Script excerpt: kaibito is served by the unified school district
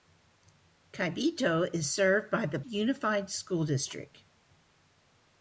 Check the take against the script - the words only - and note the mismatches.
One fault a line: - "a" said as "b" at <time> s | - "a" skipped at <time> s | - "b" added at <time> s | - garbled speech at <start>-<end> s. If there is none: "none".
none